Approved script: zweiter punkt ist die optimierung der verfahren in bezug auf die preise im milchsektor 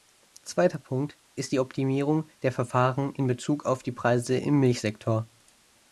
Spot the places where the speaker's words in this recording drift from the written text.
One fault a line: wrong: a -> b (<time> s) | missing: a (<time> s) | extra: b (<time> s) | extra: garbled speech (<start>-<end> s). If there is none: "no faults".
no faults